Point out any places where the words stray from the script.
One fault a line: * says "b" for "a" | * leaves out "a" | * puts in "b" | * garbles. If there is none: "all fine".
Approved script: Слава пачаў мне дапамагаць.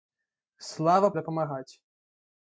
* leaves out "пачаў мне"